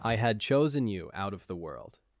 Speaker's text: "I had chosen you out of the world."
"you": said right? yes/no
yes